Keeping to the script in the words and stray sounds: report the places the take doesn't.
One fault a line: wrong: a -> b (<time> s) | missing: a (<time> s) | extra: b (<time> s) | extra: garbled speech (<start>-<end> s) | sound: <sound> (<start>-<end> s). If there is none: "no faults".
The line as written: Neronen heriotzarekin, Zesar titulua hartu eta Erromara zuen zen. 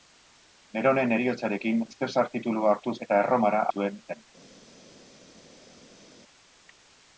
no faults